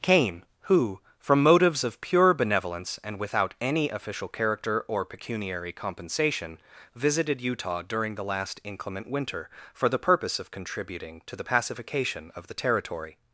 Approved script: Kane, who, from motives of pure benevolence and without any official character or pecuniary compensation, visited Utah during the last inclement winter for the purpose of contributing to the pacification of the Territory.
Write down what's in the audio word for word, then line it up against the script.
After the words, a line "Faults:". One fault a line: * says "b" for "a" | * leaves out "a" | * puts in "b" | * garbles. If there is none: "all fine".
Kane, who, from motives of pure benevolence and without any official character or pecuniary compensation, visited Utah during the last inclement winter for the purpose of contributing to the pacification of the Territory.
Faults:
all fine